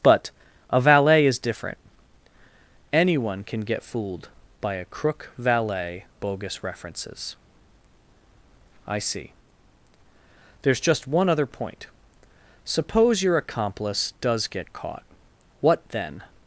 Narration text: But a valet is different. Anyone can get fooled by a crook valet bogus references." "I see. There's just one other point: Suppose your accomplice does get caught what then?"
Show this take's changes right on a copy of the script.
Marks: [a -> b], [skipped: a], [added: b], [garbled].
But a valet is different. Anyone can get fooled by a crook valet bogus references." "I see. There's just one other point: Suppose your accomplice does get caught what then?"